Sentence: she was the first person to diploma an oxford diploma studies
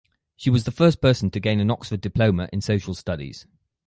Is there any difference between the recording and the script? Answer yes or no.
yes